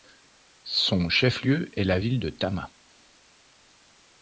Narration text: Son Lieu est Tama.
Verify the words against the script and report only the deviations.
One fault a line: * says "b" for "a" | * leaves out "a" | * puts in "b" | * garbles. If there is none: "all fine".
* puts in "chef"
* puts in "la ville de"